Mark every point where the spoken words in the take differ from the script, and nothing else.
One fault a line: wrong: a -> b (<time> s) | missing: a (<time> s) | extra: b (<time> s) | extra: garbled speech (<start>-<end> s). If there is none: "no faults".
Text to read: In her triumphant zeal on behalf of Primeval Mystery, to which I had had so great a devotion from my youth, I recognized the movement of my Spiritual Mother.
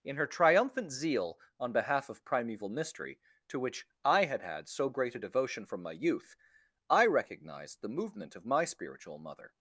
no faults